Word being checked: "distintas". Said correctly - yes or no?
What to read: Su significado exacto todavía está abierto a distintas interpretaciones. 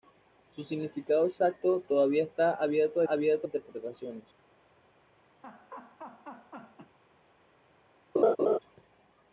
no